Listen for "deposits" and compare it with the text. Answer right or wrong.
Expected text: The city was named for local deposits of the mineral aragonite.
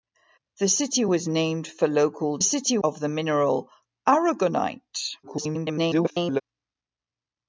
wrong